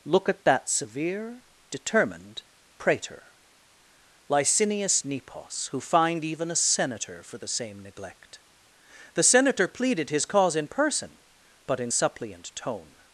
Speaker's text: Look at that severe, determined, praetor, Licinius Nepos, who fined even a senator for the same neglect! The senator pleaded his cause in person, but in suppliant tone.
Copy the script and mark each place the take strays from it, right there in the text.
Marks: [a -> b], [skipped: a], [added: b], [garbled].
Look at that severe, determined, praetor, Licinius Nepos, who fined even a senator for the same neglect! The senator pleaded his cause in person, but in suppliant tone.